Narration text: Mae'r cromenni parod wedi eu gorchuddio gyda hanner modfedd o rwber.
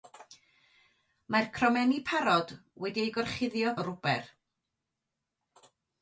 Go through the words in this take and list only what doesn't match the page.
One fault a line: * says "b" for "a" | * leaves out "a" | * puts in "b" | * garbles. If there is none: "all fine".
* leaves out "gyda hanner modfedd"